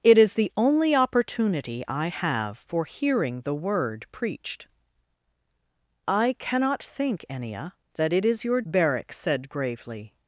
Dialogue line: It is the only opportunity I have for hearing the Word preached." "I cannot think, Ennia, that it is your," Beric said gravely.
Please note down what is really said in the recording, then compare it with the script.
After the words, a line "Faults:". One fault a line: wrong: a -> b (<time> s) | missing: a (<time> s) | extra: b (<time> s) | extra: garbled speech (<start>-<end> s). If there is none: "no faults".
It is the only opportunity I have for hearing the Word preached." "I cannot think, Ennia, that it is your," Beric said gravely.
Faults:
no faults